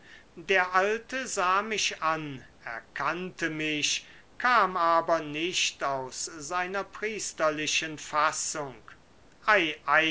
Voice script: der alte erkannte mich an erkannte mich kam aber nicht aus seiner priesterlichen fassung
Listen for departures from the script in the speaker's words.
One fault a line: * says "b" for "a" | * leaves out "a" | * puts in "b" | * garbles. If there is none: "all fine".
* says "sah" for "erkannte"